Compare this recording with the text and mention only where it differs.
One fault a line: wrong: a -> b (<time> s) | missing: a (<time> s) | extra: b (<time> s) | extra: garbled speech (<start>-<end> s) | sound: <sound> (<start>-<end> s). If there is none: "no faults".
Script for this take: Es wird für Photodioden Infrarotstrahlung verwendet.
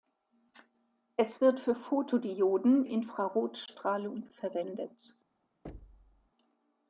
sound: thud (5.6-6.3 s)